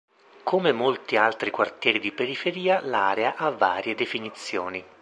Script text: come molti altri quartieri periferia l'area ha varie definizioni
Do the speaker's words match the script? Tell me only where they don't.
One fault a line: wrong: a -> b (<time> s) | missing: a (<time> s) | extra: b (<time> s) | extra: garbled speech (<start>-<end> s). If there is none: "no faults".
extra: di (2.0 s)